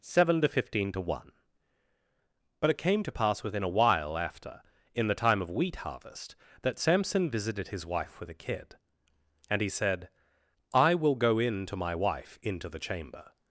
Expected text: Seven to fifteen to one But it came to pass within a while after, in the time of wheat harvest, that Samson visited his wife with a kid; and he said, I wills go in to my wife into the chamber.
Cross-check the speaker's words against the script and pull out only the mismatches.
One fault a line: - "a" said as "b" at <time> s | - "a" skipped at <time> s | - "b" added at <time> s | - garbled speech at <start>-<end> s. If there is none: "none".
- "wills" said as "will" at 10.9 s